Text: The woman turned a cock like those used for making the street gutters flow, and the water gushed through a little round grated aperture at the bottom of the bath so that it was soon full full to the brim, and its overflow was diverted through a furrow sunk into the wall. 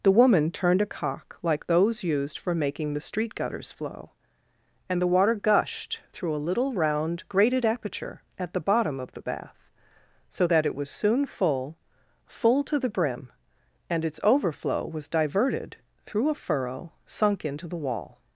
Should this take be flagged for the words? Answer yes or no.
no